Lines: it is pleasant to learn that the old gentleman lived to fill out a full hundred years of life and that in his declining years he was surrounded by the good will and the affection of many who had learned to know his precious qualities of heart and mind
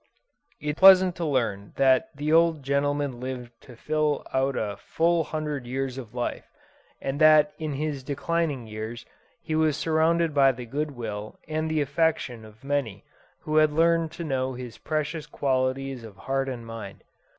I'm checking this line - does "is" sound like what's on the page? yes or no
no